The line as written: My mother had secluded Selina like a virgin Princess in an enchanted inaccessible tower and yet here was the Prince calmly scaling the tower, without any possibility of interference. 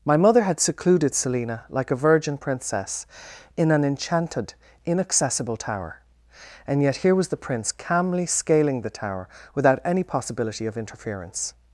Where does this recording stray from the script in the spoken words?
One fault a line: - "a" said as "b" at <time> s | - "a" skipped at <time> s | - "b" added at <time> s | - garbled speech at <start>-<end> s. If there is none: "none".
none